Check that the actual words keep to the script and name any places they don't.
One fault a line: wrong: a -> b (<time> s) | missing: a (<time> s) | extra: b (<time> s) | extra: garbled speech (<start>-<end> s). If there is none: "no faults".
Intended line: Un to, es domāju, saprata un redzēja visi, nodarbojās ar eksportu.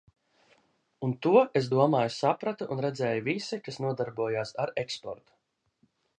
extra: kas (3.7 s)